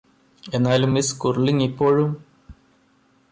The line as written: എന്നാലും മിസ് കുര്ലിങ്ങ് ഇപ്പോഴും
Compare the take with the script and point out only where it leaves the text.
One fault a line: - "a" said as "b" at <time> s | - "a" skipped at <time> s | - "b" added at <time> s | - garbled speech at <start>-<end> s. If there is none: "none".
none